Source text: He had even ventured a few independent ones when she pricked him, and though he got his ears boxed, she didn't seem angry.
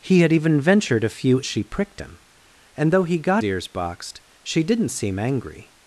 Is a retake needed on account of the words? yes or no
yes